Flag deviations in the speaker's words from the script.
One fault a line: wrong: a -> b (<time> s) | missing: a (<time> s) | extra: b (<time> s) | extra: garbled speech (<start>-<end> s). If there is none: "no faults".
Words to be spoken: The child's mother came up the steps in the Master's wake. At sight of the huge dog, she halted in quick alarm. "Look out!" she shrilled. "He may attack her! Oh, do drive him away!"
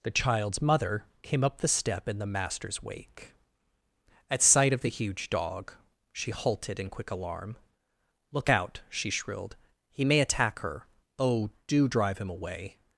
wrong: steps -> step (1.7 s)